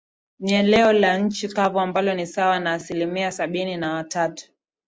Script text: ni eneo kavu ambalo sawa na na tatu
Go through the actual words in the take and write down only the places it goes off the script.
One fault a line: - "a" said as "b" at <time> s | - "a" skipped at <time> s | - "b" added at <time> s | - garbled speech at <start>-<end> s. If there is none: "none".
- "la nchi" added at 0.9 s
- "ni" added at 2.1 s
- "asilimia sabini" added at 2.7 s